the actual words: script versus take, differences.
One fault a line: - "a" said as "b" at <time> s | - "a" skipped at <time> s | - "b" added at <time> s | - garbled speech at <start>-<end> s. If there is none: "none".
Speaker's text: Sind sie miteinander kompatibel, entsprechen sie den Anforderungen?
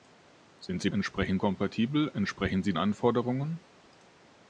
- "miteinander" said as "entsprechen" at 0.9 s
- "den" skipped at 2.7 s